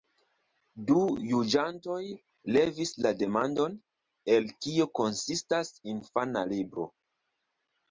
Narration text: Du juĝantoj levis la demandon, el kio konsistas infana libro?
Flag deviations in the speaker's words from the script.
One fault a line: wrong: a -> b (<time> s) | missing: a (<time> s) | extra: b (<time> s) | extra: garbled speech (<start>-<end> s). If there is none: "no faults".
no faults